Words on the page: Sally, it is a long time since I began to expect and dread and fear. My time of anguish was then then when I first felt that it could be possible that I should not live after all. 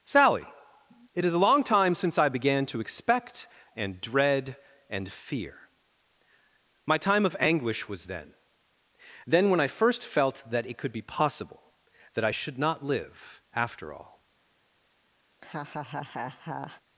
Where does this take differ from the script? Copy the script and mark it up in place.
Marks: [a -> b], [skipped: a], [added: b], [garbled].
Sally, it is a long time since I began to expect and dread and fear. My time of anguish was then then when I first felt that it could be possible that I should not live after all.